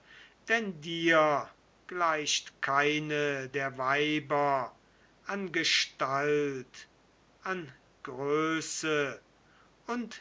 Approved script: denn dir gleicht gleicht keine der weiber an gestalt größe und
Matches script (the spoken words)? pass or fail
fail